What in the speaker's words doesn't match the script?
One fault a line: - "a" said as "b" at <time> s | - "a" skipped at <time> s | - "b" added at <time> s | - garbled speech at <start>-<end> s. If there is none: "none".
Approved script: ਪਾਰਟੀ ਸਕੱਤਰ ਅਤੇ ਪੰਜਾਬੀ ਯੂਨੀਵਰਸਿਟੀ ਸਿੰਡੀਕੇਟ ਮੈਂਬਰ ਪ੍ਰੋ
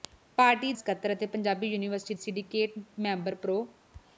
none